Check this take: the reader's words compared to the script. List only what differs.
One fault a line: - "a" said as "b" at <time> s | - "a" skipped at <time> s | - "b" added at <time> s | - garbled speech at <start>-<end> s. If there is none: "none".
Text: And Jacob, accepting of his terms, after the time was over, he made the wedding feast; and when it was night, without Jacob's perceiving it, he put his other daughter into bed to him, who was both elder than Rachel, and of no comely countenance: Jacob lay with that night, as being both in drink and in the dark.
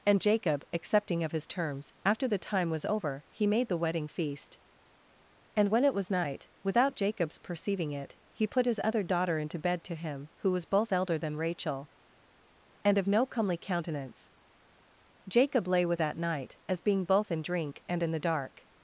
none